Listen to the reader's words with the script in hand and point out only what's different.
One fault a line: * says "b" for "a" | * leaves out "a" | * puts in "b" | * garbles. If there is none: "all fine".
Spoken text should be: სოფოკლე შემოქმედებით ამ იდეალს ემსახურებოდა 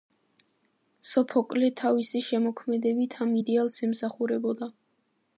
* puts in "თავისი"